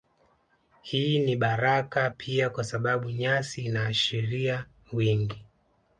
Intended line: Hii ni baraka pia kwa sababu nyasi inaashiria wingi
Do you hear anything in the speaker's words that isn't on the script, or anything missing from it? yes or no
no